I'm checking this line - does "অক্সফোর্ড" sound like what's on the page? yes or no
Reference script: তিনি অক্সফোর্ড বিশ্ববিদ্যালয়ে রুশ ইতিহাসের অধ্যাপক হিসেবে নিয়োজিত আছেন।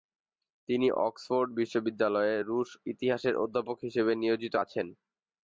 yes